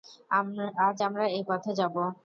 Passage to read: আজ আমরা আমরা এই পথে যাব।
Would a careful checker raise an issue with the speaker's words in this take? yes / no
yes